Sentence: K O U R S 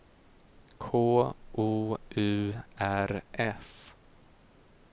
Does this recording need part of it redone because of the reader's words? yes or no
no